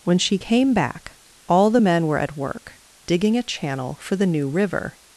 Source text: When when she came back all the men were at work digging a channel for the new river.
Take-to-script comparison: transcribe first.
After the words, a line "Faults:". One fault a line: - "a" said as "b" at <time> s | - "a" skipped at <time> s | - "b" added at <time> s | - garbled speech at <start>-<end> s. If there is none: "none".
When she came back all the men were at work digging a channel for the new river.
Faults:
- "when" skipped at 0.2 s